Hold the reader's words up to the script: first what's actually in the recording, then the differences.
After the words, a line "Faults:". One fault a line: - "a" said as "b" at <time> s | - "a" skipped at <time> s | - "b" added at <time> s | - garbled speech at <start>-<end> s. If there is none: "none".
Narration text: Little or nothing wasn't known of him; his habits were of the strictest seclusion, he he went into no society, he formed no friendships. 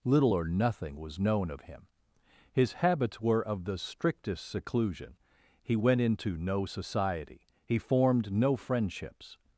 Little or nothing was known of him; his habits were of the strictest seclusion, he went into no society, he formed no friendships.
Faults:
- "wasn't" said as "was" at 0.9 s
- "he" skipped at 5.7 s